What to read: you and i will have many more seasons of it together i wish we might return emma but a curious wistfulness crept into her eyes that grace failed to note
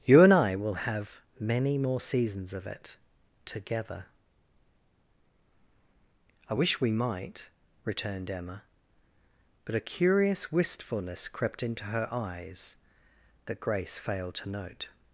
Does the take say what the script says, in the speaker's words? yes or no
no